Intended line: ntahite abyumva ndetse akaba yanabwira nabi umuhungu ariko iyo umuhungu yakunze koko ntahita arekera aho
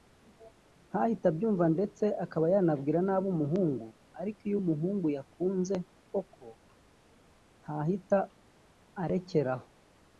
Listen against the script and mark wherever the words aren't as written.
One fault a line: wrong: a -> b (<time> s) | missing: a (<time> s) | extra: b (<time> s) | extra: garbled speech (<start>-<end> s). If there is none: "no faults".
no faults